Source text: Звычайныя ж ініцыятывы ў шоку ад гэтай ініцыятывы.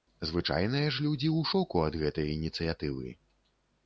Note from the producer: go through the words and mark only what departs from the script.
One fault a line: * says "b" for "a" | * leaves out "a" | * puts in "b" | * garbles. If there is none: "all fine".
* says "людзі" for "ініцыятывы"